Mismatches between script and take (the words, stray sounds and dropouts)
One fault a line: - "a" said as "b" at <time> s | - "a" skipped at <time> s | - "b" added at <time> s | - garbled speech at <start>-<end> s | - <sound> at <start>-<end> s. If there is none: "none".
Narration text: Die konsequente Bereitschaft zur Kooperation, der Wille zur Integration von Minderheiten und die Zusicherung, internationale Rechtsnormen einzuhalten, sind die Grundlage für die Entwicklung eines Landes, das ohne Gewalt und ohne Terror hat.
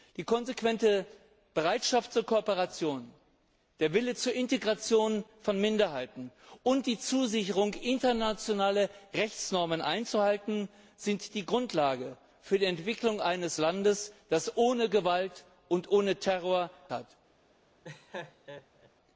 - laugh at 17.8-18.9 s